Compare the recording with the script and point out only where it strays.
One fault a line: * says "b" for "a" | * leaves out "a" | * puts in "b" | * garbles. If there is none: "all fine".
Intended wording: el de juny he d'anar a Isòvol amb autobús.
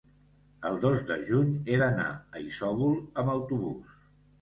* puts in "dos"